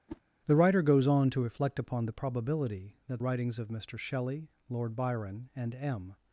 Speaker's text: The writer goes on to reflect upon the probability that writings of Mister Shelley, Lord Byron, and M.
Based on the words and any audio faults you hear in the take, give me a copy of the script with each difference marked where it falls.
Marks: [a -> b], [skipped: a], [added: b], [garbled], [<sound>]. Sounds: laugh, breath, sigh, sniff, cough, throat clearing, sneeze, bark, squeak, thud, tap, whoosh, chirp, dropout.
[whoosh] The writer goes on to reflect upon the probability that writings of Mister Shelley, Lord Byron, and M.